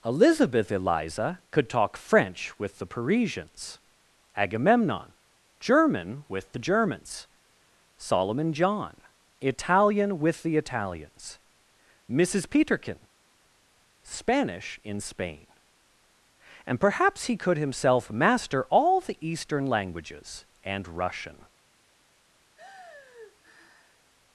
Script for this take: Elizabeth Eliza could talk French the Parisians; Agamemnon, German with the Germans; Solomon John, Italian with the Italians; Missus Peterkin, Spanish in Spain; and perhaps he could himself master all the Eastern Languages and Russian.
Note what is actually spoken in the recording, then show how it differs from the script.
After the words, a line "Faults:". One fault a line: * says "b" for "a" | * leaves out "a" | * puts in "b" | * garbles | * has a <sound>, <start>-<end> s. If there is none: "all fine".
Elizabeth Eliza could talk French with the Parisians; Agamemnon, German with the Germans; Solomon John, Italian with the Italians; Missus Peterkin, Spanish in Spain; and perhaps he could himself master all the Eastern Languages and Russian.
Faults:
* puts in "with"
* has a sigh, 22.6-24.1 s